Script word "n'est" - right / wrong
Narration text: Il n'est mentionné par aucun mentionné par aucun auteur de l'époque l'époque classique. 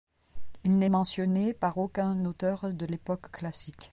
right